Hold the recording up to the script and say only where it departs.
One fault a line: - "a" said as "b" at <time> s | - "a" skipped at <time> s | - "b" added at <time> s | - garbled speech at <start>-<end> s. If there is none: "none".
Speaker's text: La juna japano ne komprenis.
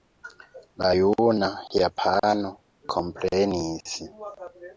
- "ne" skipped at 2.5 s